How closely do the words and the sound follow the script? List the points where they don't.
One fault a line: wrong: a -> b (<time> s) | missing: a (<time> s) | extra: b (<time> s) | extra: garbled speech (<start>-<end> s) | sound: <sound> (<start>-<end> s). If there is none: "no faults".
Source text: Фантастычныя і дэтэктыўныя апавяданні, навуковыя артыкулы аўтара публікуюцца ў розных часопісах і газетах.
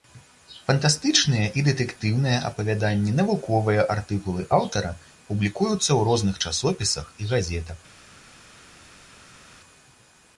no faults